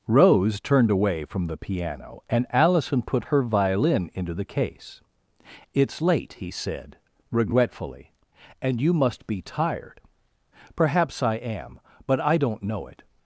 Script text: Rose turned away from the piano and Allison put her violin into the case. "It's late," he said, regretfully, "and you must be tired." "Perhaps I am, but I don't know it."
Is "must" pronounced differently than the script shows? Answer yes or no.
no